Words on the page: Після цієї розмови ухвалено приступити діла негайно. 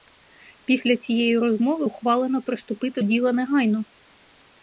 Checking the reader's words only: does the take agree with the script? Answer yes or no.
yes